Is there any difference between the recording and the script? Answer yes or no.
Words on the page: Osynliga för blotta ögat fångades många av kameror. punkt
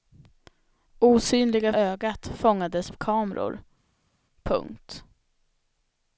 yes